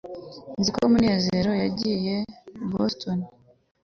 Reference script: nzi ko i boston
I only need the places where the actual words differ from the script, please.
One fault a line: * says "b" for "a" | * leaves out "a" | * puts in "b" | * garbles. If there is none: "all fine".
* puts in "munezero yagiye"